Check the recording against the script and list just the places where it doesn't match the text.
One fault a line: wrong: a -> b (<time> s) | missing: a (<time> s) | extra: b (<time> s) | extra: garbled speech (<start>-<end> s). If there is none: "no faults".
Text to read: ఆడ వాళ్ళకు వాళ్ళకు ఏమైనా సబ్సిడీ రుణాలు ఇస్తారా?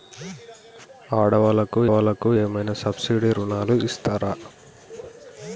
no faults